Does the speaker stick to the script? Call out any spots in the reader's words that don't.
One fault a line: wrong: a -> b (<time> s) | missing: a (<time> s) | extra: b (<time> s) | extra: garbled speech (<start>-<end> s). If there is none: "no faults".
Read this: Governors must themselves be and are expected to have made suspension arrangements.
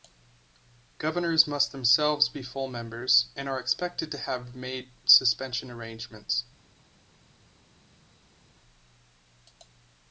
extra: full members (2.4 s)